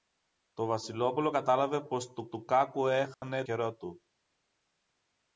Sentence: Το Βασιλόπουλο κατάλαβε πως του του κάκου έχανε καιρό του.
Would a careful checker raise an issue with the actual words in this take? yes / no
no